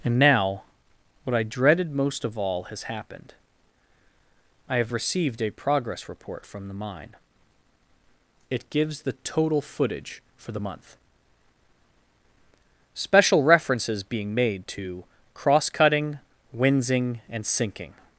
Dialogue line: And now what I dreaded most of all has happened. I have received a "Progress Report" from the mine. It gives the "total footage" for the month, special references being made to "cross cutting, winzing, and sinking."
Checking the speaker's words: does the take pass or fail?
pass